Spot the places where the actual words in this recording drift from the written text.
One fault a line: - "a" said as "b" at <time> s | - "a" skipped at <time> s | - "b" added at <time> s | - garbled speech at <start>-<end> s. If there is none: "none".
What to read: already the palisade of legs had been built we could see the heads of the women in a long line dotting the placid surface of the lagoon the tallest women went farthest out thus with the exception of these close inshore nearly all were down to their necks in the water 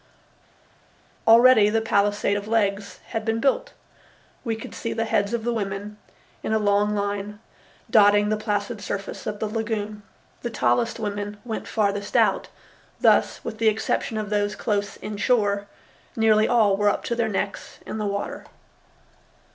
- "these" said as "those" at 14.3 s
- "down" said as "up" at 16.9 s